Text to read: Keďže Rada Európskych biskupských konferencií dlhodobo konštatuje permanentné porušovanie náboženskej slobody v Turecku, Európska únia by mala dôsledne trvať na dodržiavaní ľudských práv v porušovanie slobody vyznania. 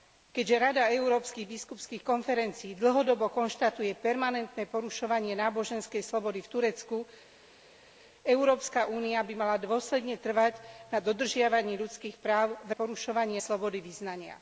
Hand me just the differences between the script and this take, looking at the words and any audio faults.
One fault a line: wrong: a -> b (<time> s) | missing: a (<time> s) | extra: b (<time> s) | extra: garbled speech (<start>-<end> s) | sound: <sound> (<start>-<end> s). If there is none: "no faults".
no faults